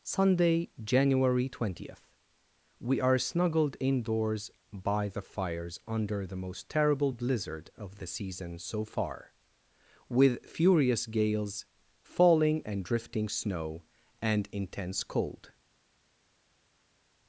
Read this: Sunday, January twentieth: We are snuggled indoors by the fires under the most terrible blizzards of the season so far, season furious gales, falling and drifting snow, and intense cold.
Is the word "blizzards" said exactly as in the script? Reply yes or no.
no